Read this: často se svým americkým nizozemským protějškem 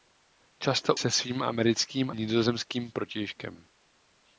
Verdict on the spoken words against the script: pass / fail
pass